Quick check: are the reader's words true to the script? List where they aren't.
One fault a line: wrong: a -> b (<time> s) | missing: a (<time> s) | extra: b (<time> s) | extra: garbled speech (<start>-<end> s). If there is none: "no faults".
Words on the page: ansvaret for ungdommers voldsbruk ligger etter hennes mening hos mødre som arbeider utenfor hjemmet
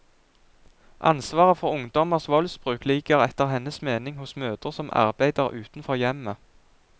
no faults